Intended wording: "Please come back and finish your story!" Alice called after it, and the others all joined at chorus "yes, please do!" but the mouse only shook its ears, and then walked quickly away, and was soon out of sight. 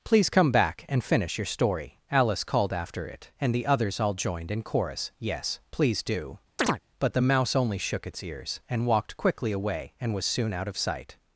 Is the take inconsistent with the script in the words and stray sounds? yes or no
yes